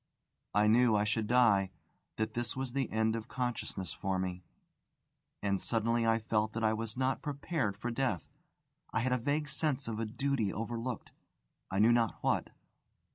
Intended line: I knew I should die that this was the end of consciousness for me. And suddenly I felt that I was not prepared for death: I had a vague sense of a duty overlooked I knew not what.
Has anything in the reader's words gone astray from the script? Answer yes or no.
no